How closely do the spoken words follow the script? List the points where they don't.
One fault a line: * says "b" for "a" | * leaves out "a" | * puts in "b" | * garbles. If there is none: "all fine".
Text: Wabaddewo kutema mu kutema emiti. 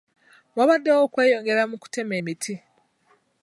* says "okweyongera" for "kutema"